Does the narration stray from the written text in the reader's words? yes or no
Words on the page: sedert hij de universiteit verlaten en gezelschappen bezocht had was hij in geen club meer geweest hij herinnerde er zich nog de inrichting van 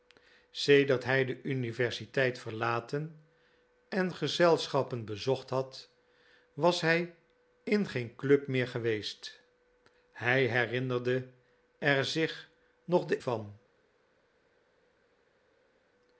yes